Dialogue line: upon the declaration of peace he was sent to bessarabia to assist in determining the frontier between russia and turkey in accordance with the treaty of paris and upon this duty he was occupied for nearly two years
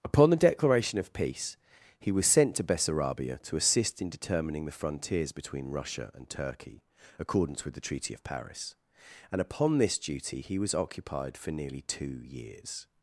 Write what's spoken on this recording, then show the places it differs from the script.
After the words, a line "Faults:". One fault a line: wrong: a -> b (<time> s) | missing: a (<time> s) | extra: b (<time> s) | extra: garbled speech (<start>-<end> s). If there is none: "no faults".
upon the declaration of peace he was sent to bessarabia to assist in determining the frontiers between russia and turkey accordance with the treaty of paris and upon this duty he was occupied for nearly two years
Faults:
wrong: frontier -> frontiers (4.7 s)
missing: in (6.8 s)